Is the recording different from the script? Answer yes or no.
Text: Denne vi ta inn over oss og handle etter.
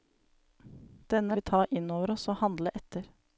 no